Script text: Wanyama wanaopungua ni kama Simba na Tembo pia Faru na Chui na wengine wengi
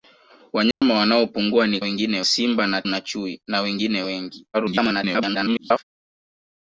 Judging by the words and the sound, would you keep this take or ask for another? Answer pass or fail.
fail